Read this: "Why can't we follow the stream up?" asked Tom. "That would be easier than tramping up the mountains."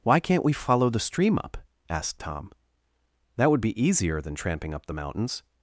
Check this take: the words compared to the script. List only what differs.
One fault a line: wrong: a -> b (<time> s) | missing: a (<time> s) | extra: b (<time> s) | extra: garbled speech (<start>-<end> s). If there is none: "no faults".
no faults